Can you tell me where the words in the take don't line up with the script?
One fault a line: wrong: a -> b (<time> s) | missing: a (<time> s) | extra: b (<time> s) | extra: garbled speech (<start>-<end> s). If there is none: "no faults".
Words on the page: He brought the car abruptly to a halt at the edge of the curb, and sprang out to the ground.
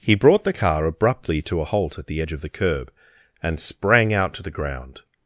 no faults